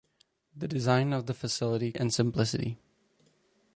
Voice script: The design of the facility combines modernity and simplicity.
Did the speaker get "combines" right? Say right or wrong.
wrong